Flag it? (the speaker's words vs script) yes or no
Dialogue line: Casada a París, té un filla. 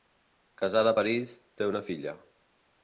yes